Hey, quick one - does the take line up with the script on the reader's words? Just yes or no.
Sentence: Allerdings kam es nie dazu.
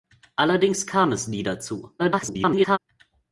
no